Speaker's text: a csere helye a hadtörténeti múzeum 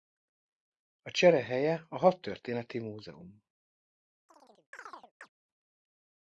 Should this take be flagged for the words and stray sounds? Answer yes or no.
yes